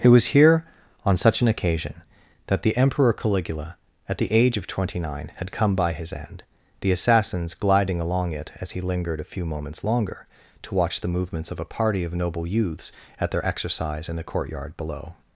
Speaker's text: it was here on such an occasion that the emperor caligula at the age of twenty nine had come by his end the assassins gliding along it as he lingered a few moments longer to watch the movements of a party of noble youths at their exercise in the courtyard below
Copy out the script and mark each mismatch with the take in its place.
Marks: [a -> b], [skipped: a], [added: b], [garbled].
it was here on such an occasion that the emperor caligula at the age of twenty nine had come by his end the assassins gliding along it as he lingered a few moments longer to watch the movements of a party of noble youths at their exercise in the courtyard below